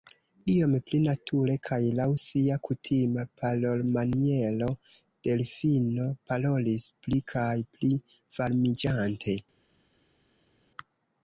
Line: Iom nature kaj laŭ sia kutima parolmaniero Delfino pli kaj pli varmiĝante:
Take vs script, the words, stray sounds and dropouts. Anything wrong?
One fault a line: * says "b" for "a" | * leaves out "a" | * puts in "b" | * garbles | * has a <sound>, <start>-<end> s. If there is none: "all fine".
* puts in "pli"
* puts in "parolis"